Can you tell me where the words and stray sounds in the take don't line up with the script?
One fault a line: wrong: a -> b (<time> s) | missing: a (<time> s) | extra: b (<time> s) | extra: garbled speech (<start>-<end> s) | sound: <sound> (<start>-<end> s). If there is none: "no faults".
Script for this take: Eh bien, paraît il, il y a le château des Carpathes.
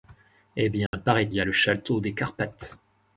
sound: dropout (0.9-0.9 s)
missing: il il (1.3 s)